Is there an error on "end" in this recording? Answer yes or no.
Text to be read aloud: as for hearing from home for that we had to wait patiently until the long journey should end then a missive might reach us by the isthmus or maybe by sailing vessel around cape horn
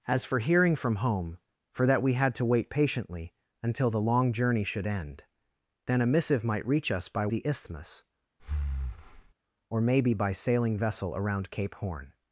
no